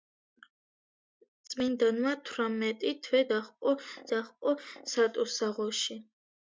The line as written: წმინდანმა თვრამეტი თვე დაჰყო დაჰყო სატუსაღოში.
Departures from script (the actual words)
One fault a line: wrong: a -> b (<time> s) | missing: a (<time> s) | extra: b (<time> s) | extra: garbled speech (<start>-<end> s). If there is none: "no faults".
no faults